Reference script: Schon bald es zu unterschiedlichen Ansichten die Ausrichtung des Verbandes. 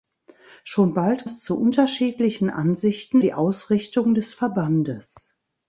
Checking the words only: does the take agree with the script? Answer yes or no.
yes